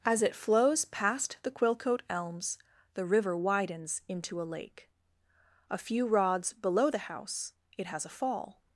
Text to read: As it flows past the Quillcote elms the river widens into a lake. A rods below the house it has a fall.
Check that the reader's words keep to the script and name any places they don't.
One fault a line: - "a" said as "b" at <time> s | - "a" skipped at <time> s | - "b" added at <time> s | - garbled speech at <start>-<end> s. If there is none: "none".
- "few" added at 5.8 s